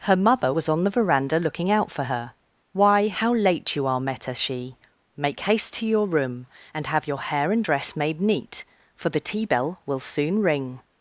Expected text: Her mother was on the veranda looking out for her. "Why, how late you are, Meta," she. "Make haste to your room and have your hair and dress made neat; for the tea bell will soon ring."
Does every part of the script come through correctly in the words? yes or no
yes